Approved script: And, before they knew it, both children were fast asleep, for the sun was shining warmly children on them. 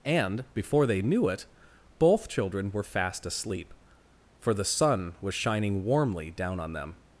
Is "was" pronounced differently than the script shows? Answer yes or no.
no